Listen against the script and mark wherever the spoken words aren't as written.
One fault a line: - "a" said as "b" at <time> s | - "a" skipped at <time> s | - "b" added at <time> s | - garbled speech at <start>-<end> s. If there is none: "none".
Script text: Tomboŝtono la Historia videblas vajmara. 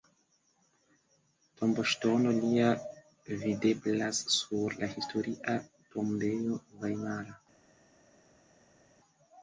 - "lia videblas sur" added at 2.4 s
- "videblas" said as "tombejo" at 6.0 s